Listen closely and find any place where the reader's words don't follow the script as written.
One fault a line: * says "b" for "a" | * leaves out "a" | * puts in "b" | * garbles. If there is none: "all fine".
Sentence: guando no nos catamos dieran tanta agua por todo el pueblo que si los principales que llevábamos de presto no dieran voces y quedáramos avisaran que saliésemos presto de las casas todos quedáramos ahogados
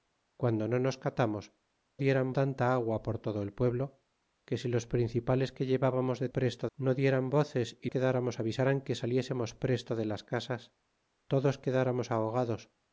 all fine